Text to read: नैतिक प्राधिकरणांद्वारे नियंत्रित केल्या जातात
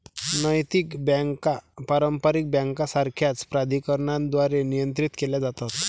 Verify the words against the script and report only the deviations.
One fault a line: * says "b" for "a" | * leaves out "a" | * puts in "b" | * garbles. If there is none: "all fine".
* puts in "बँका पारंपारिक बँकांसारख्याच"